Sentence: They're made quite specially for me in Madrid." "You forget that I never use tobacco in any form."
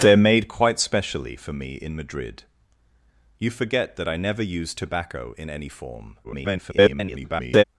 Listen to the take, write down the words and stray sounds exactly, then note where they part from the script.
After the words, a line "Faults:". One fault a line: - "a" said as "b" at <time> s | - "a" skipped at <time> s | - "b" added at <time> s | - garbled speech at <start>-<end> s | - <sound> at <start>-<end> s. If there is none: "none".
They're made quite specially for me in Madrid." "You forget that I never use tobacco in any form." [garbled]
Faults:
- garbled speech at 6.2-7.6 s